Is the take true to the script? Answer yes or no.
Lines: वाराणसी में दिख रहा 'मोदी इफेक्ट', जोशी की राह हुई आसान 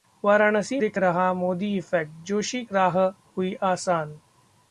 no